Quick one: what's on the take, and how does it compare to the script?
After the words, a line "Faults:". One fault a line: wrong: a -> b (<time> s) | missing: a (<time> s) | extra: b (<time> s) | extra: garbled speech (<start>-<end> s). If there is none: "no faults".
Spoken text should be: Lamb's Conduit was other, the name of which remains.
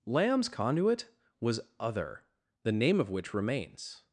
Lamb's Conduit was other, the name of which remains.
Faults:
no faults